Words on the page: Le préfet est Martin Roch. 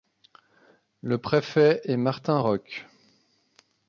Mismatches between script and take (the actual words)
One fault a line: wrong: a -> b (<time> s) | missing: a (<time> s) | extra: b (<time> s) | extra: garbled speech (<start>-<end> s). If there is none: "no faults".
no faults